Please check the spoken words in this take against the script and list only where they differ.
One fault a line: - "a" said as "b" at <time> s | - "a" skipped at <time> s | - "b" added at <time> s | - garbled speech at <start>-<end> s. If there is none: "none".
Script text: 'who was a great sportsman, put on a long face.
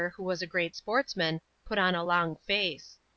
none